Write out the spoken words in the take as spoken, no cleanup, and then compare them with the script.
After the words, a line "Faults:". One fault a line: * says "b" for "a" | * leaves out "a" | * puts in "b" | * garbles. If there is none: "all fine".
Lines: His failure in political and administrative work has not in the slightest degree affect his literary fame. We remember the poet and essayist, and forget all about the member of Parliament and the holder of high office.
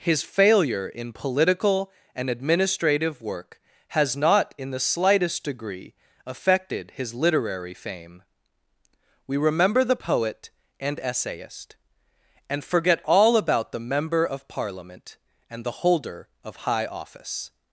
His failure in political and administrative work has not in the slightest degree affected his literary fame. We remember the poet and essayist, and forget all about the member of Parliament and the holder of high office.
Faults:
* says "affected" for "affect"